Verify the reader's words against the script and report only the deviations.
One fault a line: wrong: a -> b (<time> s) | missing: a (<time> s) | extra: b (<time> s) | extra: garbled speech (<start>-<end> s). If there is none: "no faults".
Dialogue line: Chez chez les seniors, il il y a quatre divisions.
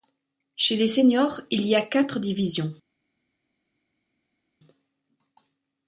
missing: chez (0.8 s)
missing: il (1.7 s)